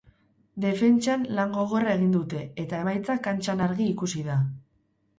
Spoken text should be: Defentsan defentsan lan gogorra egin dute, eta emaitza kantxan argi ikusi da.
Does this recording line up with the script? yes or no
no